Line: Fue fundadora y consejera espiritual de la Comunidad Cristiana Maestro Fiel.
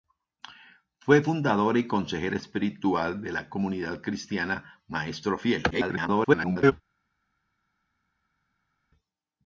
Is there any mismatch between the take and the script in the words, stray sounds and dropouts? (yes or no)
yes